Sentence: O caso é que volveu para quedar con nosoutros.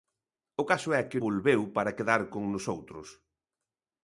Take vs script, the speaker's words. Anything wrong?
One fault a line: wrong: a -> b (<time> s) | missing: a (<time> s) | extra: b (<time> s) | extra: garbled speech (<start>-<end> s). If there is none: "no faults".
no faults